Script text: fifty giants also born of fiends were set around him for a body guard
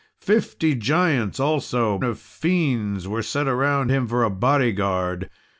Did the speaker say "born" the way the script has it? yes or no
no